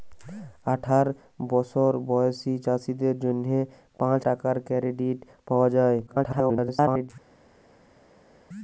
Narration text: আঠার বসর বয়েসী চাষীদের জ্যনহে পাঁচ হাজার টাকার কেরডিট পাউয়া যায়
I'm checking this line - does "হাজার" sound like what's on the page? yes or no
no